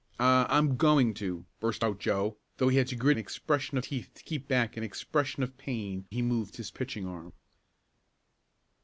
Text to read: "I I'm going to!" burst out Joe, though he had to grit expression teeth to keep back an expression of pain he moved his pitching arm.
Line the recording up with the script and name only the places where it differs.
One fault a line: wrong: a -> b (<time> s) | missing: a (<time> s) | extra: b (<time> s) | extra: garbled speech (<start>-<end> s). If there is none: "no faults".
no faults